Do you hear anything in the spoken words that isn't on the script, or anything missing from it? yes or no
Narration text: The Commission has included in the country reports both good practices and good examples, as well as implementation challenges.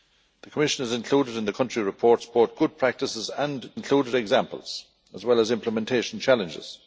yes